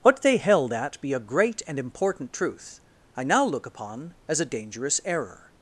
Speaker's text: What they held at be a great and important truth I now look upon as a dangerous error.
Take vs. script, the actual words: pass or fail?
pass